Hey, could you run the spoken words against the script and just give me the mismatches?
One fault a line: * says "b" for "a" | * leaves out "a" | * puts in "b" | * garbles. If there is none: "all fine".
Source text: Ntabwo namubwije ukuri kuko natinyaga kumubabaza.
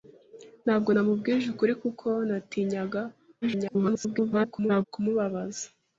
* garbles